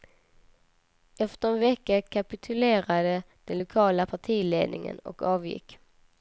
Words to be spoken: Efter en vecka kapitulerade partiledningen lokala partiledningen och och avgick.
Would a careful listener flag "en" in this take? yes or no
no